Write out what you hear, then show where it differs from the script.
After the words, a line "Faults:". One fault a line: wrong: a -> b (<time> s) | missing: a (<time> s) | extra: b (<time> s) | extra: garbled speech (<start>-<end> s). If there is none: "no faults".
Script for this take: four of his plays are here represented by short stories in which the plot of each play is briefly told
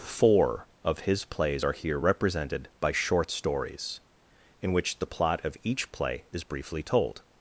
four of his plays are here represented by short stories in which the plot of each play is briefly told
Faults:
no faults